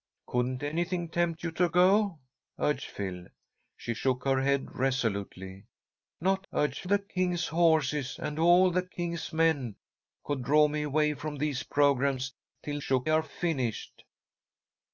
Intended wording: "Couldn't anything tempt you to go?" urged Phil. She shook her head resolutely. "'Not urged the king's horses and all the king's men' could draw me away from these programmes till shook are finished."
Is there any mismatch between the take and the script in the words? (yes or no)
no